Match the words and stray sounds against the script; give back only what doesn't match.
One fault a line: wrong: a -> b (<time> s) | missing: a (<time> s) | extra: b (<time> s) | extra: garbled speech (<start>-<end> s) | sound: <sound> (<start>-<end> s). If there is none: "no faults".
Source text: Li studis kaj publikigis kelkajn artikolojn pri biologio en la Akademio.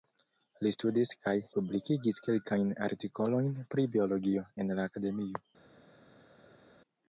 no faults